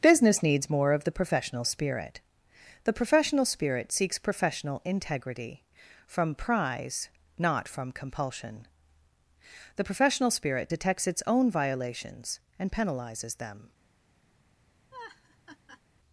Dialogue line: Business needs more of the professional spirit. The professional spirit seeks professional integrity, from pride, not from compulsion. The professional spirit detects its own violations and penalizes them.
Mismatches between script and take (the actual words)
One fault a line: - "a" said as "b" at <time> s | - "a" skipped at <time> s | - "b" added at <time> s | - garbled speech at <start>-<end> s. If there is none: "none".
- "pride" said as "prize" at 6.3 s